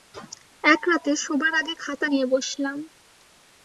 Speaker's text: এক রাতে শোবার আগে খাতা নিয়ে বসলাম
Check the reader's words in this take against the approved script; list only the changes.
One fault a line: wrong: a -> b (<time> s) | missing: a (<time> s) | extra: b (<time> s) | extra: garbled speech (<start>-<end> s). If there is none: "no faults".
no faults